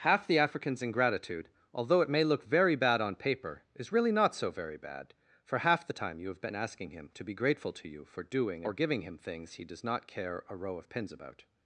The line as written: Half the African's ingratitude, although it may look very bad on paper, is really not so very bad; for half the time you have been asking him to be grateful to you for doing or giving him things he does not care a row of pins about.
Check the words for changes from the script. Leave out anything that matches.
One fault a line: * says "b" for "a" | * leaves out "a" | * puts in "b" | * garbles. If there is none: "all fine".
all fine